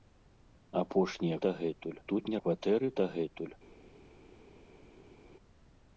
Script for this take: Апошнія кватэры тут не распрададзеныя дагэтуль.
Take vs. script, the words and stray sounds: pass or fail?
fail